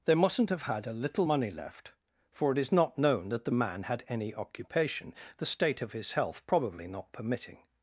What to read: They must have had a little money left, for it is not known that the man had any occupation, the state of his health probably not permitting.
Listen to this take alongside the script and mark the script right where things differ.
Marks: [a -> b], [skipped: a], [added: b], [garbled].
They [must -> mustn't] have had a little money left, for it is not known that the man had any occupation, the state of his health probably not permitting.